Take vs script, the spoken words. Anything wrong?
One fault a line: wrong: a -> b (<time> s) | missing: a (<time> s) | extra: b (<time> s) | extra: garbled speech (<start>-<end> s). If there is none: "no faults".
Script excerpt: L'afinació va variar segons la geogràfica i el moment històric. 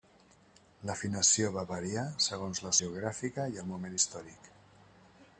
no faults